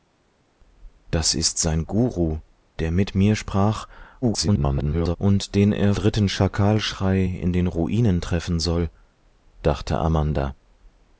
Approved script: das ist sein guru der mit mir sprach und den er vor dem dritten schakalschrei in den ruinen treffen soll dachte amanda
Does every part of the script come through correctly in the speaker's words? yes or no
no